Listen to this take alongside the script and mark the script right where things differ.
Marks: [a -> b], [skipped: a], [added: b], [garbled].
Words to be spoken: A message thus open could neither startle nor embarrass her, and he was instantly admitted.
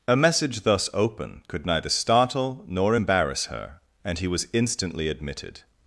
A message thus open could neither startle nor embarrass her, and he was instantly admitted.